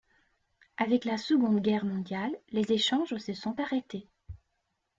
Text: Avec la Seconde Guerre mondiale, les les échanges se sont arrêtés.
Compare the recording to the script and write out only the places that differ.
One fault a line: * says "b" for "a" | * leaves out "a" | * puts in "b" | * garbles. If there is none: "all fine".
* leaves out "les"